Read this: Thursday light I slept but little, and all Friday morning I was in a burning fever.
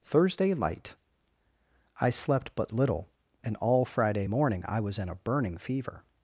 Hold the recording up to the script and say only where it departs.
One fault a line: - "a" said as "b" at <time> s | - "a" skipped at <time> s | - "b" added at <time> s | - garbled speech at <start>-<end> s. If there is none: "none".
none